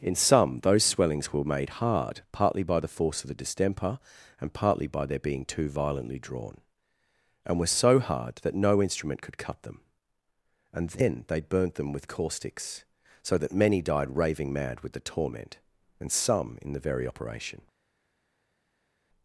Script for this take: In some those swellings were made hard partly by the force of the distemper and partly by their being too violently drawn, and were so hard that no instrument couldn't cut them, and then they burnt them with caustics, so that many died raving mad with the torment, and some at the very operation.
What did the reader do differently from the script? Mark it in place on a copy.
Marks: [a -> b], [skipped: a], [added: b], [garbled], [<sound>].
In some those swellings were made hard partly by the force of the distemper and partly by their being too violently drawn, and were so hard that no instrument [couldn't -> could] cut them, and then they burnt them with caustics, so that many died raving mad with the torment, and some [at -> in] the very operation.